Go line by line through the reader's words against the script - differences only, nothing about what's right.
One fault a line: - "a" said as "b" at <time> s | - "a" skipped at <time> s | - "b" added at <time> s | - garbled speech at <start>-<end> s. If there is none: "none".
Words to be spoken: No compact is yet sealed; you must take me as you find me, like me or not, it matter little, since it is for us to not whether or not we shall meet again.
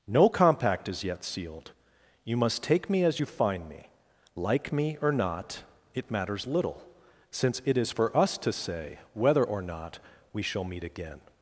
- "matter" said as "matters" at 6.1 s
- "not" said as "say" at 8.5 s